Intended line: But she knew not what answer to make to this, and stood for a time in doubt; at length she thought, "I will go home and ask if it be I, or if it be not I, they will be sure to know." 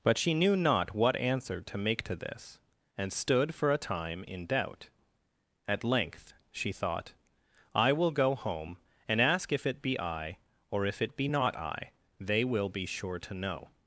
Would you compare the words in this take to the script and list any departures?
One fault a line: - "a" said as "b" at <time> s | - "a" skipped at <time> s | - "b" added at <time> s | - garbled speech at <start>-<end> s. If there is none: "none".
none